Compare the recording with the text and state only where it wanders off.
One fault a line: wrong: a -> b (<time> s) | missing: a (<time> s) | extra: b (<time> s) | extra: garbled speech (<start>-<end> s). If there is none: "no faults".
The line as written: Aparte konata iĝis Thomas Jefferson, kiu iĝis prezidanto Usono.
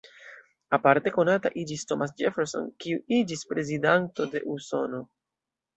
extra: de (4.4 s)